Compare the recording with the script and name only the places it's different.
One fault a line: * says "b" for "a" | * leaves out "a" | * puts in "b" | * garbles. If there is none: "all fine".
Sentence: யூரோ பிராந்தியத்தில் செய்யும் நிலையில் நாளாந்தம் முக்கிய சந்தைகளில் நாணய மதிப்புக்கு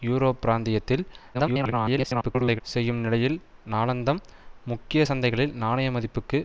* garbles